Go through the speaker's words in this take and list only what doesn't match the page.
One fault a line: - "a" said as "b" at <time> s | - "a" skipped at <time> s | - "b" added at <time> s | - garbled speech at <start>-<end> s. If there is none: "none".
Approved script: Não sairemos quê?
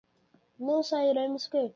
none